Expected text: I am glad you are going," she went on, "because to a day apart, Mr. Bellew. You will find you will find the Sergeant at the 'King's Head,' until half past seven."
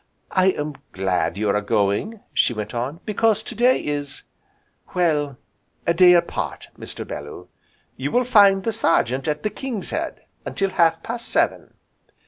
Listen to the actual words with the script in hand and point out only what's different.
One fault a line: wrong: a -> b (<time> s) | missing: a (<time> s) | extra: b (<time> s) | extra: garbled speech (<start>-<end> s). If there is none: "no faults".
extra: day is well (3.5 s)
missing: you will find (8.6 s)